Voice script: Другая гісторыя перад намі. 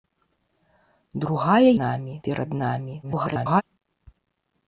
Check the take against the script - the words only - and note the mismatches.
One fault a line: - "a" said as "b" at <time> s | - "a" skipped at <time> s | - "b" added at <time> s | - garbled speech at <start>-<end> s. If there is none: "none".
- "гісторыя" said as "намі" at 1.8 s
- garbled speech at 3.0-3.6 s